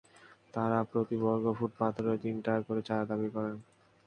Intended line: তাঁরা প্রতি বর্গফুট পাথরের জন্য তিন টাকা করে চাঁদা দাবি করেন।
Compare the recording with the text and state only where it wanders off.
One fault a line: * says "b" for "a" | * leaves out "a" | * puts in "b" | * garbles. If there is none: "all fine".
* leaves out "জন্য"